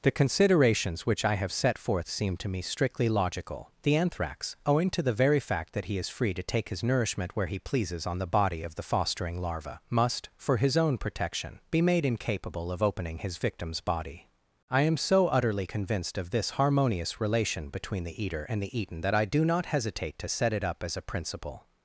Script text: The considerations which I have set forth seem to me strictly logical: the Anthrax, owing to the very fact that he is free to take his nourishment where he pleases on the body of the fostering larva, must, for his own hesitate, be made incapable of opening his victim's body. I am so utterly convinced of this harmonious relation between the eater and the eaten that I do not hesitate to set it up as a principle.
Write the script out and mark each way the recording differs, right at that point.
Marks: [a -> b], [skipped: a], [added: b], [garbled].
The considerations which I have set forth seem to me strictly logical: the Anthrax, owing to the very fact that he is free to take his nourishment where he pleases on the body of the fostering larva, must, for his own [hesitate, -> protection] be made incapable of opening his victim's body. I am so utterly convinced of this harmonious relation between the eater and the eaten that I do not hesitate to set it up as a principle.